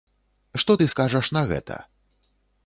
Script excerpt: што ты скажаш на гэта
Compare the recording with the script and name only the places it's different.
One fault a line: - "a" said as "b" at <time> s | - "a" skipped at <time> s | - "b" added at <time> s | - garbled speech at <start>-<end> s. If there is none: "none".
none